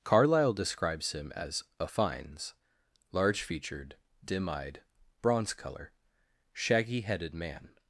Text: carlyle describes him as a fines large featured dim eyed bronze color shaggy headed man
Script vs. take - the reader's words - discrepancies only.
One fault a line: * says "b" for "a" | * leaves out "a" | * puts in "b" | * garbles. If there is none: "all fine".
all fine